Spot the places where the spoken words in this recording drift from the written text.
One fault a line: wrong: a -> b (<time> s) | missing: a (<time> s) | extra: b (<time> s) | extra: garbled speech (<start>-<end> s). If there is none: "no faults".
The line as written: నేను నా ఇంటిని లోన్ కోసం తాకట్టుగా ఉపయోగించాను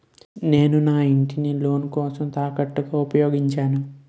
no faults